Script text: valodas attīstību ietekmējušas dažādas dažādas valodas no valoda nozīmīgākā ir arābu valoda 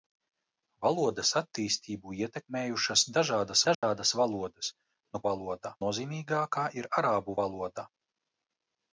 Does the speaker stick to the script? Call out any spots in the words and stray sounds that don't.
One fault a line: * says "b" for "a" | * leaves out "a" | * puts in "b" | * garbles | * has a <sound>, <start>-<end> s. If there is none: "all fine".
* has a dropout, 3.7-3.8 s